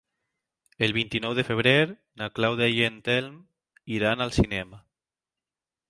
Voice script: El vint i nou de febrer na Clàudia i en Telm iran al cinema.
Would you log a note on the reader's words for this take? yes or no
no